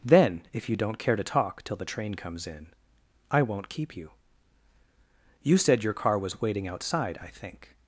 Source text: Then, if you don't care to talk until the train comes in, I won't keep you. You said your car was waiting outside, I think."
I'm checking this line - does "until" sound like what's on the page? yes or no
no